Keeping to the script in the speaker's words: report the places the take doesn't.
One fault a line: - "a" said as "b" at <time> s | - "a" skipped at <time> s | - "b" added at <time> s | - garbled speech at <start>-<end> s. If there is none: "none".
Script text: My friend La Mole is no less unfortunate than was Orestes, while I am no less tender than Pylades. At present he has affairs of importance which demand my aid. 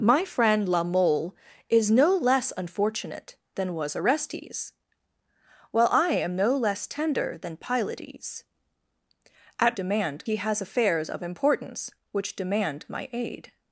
- "present" said as "demand" at 9.7 s